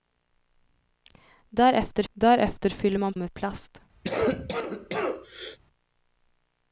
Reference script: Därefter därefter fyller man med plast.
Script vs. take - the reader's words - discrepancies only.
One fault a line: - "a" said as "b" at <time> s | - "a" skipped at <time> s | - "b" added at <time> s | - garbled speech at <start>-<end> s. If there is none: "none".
none